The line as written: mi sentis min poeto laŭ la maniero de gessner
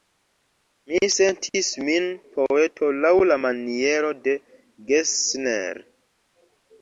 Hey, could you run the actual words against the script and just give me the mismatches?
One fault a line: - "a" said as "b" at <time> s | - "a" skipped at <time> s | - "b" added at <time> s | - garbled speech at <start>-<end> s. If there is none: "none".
none